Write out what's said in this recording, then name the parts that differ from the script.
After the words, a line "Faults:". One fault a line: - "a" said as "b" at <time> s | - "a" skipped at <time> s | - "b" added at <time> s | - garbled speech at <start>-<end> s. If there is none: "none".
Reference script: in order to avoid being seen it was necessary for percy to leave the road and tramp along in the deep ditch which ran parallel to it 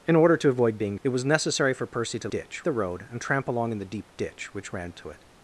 in order to avoid being it was necessary for percy to ditch the road and tramp along in the deep ditch which ran to it
Faults:
- "seen" skipped at 1.0 s
- "leave" said as "ditch" at 2.3 s
- "parallel" skipped at 4.9 s